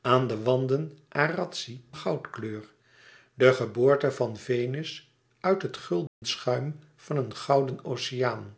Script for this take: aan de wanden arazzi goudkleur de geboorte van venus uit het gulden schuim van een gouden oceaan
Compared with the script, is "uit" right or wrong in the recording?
right